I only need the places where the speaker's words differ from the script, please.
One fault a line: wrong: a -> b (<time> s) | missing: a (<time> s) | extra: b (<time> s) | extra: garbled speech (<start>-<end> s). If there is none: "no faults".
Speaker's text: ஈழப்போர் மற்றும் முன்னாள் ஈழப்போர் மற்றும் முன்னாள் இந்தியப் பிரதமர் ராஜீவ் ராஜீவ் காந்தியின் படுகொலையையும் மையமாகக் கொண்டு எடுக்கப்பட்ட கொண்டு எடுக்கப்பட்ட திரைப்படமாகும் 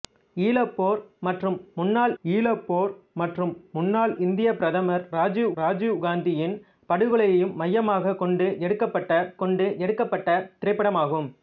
no faults